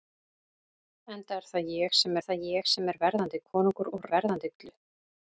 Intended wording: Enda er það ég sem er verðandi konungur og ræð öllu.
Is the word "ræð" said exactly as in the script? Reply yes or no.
no